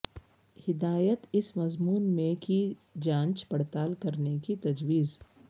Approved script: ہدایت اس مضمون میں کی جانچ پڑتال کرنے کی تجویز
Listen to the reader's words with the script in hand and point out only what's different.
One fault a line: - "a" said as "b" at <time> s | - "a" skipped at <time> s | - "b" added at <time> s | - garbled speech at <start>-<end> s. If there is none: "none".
none